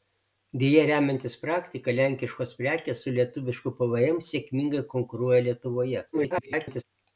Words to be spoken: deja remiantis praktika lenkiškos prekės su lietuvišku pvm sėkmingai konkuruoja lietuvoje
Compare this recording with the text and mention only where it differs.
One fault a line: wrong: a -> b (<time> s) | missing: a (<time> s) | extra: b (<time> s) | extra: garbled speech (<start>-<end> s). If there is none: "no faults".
extra: garbled speech (6.1-6.8 s)